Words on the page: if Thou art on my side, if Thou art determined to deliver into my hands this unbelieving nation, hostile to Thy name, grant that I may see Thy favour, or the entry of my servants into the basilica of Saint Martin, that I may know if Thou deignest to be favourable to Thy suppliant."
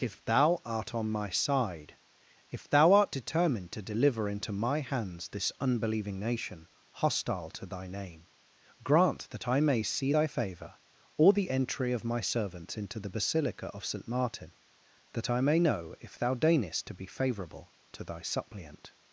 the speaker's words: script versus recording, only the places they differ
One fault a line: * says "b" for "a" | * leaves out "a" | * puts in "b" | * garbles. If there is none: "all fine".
all fine